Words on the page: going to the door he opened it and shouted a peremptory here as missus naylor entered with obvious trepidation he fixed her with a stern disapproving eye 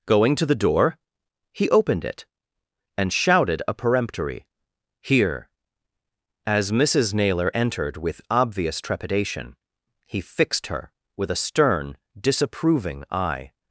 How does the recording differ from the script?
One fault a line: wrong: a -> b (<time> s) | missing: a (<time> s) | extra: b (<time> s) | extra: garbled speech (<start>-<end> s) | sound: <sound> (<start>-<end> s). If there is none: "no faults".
no faults